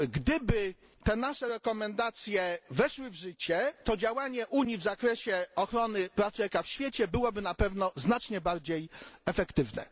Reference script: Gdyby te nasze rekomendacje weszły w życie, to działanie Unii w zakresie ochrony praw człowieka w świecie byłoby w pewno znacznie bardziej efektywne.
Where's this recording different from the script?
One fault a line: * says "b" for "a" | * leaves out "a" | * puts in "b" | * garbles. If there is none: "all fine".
* says "na" for "w"